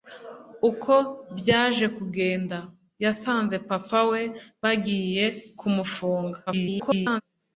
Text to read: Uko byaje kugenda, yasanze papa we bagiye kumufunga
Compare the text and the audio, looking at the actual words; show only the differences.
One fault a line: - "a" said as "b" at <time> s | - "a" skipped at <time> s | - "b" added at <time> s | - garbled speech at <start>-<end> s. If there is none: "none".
- garbled speech at 6.5-7.2 s